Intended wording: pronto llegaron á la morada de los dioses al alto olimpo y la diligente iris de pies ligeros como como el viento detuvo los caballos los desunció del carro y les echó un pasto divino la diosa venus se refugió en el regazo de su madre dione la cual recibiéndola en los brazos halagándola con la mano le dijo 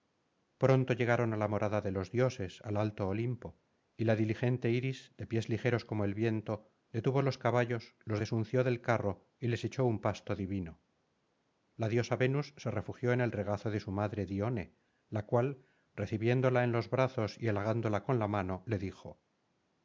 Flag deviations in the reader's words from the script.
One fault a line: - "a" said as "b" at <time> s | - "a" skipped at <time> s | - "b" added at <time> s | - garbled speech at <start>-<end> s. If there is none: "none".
- "como" skipped at 6.0 s
- "y" added at 17.4 s